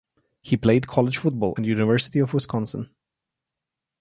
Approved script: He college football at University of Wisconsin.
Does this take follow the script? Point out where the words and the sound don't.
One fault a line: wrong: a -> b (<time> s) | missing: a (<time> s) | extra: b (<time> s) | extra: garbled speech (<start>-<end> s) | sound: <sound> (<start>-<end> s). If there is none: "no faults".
extra: played (0.6 s)